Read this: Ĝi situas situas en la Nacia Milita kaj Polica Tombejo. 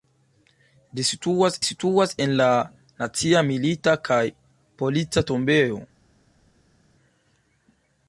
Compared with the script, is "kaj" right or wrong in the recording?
right